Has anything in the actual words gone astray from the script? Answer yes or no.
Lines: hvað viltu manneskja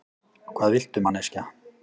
no